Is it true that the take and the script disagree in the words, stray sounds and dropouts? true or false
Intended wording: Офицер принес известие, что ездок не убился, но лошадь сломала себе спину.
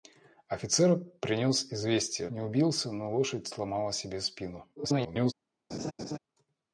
true